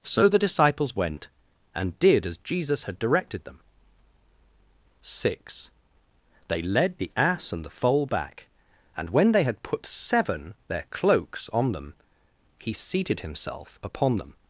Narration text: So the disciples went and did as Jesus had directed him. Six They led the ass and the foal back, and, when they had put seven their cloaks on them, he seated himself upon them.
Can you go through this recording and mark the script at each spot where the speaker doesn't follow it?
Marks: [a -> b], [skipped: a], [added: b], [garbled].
So the disciples went and did as Jesus had directed [him. -> them] Six They led the ass and the foal back, and, when they had put seven their cloaks on them, he seated himself upon them.